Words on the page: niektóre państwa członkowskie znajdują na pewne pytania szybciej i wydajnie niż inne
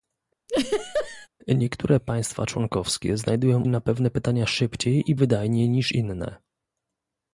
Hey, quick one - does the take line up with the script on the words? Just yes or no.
yes